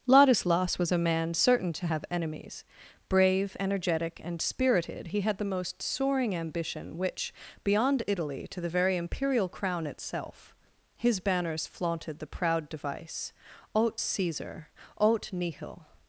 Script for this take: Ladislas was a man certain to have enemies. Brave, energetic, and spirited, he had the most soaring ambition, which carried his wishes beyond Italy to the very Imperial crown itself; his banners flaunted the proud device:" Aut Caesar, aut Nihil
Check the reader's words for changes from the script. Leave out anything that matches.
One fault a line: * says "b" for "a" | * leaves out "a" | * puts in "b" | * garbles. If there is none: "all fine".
* leaves out "carried his wishes"